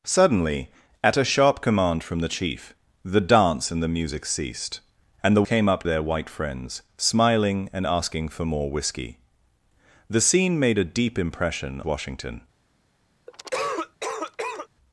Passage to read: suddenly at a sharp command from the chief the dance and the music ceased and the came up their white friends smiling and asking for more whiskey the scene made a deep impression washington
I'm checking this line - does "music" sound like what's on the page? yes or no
yes